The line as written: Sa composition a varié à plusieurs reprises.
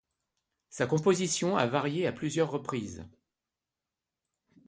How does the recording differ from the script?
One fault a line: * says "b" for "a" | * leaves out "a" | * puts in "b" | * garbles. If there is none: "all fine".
all fine